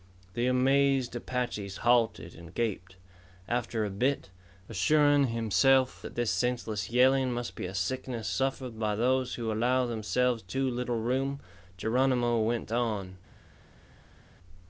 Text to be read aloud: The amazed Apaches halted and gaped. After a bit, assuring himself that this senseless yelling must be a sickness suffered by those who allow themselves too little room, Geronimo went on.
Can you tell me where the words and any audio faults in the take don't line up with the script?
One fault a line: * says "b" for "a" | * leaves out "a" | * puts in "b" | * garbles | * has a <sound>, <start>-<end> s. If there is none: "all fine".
all fine